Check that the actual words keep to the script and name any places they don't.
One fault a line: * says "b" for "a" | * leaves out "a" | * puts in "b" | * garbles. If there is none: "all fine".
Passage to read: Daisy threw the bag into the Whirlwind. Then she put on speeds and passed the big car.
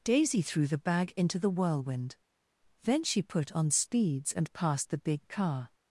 all fine